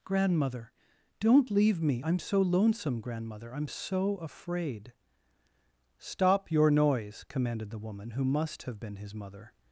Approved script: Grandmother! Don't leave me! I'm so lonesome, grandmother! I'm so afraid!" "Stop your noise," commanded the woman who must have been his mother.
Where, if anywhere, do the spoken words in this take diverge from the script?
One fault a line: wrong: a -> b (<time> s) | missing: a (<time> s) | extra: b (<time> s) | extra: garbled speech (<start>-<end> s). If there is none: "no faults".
no faults